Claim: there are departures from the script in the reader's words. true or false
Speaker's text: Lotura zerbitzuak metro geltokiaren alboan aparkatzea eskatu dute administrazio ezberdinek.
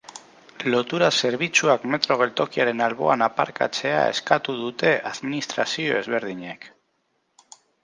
false